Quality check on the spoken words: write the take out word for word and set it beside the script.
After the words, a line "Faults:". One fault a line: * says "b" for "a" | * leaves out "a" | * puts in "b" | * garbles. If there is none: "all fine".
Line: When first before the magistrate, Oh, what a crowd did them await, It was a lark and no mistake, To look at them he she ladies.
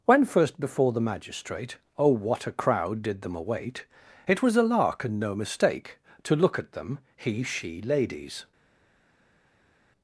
When first before the magistrate, Oh, what a crowd did them await, It was a lark and no mistake, To look at them he she ladies.
Faults:
all fine